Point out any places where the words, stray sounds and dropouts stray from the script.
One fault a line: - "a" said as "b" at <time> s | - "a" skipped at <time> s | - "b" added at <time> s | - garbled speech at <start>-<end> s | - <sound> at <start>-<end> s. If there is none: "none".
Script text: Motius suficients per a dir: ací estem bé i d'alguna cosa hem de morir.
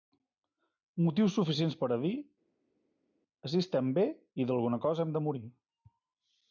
none